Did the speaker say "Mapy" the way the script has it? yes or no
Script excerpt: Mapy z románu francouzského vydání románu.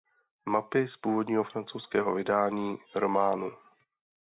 yes